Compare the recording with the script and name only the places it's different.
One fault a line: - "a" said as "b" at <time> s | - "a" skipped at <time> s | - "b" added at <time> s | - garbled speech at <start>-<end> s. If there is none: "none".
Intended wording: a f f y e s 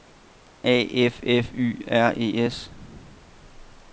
- "r" added at 1.9 s